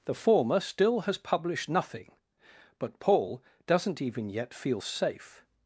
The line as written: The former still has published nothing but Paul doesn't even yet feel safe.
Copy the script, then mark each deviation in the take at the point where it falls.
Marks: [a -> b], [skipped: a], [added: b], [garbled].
The former still has published nothing but Paul doesn't even yet feel safe.